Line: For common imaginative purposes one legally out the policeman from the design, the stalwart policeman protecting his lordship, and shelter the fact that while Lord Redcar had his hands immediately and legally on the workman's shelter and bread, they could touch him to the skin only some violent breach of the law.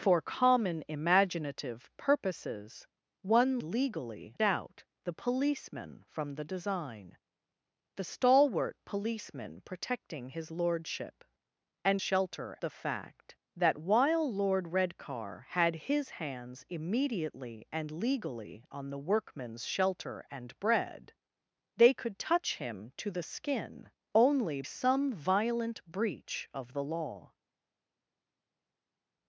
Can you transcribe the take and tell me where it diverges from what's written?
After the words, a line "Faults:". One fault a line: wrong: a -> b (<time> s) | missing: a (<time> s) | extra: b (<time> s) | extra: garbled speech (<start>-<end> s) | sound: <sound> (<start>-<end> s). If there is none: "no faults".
For common imaginative purposes one legally out the policeman from the design, the stalwart policeman protecting his lordship, and shelter the fact that while Lord Redcar had his hands immediately and legally on the workman's shelter and bread, they could touch him to the skin only some violent breach of the law.
Faults:
no faults